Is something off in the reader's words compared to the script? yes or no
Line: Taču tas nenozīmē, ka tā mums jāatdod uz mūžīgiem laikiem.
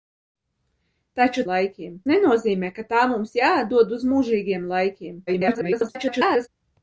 yes